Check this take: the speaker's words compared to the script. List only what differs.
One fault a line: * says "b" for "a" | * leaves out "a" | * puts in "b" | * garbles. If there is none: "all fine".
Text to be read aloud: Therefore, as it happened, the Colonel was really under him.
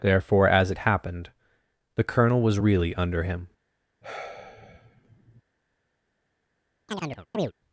all fine